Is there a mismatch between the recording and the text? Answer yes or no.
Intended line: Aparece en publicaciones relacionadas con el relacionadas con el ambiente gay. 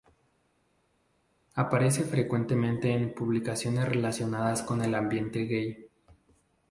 yes